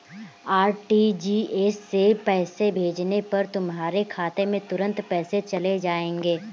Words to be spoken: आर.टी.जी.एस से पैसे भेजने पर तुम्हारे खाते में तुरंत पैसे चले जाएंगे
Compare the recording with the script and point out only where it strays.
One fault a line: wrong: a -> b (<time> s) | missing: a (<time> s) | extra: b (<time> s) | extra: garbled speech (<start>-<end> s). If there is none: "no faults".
no faults